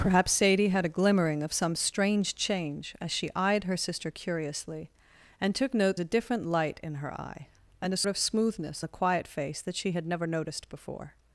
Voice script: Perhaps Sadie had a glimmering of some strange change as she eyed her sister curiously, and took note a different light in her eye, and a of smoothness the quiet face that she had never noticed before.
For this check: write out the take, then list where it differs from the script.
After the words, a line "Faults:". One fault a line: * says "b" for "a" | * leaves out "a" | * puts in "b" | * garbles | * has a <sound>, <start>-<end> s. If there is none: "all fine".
Perhaps Sadie had a glimmering of some strange change as she eyed her sister curiously, and took note a different light in her eye, and a of smoothness the quiet face that she had never noticed before.
Faults:
all fine